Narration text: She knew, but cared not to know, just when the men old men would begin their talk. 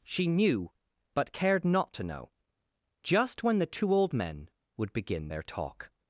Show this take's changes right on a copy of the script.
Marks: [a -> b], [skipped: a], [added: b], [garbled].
She knew, but cared not to know, just when the [men -> two] old men would begin their talk.